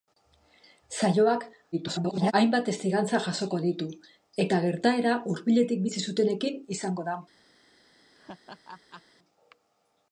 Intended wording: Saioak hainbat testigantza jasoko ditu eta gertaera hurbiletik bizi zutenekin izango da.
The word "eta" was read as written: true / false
true